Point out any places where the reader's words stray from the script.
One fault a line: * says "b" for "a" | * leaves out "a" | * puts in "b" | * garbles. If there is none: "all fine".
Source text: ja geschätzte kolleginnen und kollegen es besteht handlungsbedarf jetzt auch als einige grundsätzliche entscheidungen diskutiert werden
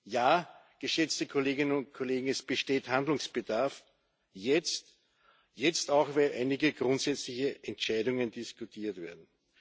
* says "weil" for "als"